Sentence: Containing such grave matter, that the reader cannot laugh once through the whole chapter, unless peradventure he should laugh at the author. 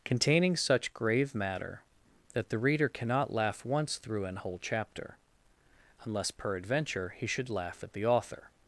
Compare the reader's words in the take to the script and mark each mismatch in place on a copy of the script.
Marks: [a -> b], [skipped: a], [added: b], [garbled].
Containing such grave matter, that the reader cannot laugh once through [the -> an] whole chapter, unless peradventure he should laugh at the author.